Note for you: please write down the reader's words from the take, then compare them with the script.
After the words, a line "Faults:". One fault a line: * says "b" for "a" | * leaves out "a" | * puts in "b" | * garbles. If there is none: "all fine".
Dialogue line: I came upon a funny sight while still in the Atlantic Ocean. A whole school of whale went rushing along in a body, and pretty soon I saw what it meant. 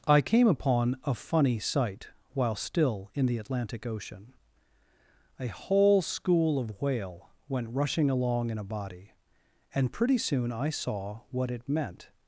I came upon a funny sight while still in the Atlantic Ocean. A whole school of whale went rushing along in a body, and pretty soon I saw what it meant.
Faults:
all fine